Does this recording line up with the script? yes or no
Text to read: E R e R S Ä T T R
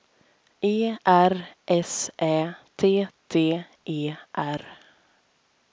no